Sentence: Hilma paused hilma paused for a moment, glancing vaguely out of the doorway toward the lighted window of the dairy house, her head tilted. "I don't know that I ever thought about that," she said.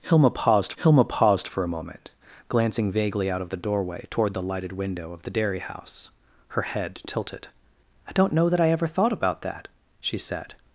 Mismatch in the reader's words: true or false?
false